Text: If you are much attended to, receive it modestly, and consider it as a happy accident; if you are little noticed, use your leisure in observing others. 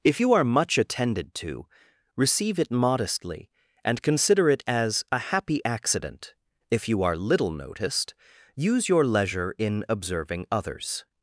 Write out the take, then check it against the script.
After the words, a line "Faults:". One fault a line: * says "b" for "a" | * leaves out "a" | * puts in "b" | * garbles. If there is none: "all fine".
If you are much attended to, receive it modestly, and consider it as a happy accident; if you are little noticed, use your leisure in observing others.
Faults:
all fine